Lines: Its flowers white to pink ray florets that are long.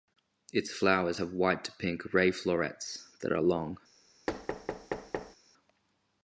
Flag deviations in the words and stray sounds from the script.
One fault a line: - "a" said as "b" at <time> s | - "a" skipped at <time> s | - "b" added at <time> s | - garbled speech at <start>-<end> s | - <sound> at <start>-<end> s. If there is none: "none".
- "have" added at 1.1 s
- thud at 4.3-5.4 s